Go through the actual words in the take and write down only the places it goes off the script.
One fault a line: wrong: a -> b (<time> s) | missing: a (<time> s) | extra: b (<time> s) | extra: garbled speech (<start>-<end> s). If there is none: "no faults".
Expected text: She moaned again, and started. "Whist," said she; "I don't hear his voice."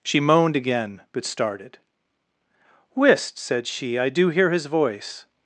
wrong: and -> but (1.1 s)
wrong: don't -> do (4.1 s)